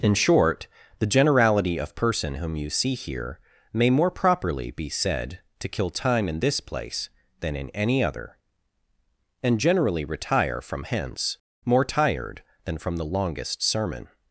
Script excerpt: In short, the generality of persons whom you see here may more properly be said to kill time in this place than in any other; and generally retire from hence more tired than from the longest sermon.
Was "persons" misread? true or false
true